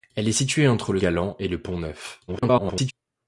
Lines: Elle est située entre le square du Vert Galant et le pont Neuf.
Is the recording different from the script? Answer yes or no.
yes